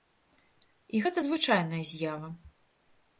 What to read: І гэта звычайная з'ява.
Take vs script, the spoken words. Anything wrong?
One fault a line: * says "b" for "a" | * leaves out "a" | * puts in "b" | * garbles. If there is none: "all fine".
all fine